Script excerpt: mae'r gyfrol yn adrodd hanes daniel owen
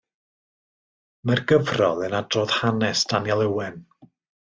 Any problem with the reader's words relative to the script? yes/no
no